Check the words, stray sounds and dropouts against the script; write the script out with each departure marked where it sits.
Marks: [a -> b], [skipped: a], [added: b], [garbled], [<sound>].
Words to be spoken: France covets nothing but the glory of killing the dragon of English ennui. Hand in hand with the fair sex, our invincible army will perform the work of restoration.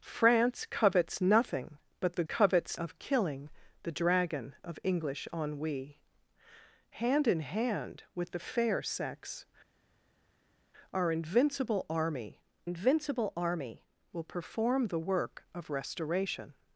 France covets nothing but the [glory -> covets] of killing the dragon of English ennui. Hand in hand with the fair sex, our invincible army [added: invincible army] will perform the work of restoration.